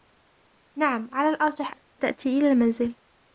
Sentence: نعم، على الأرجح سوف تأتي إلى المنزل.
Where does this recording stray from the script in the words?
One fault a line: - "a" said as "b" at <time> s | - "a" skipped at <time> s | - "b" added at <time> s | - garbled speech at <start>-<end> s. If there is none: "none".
none